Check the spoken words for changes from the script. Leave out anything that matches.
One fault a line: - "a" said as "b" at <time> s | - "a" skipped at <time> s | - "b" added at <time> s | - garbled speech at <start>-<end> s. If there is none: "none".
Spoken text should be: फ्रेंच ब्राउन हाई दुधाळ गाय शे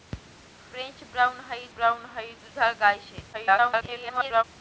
- "ब्राउन हाई" added at 1.7 s
- garbled speech at 3.3-4.4 s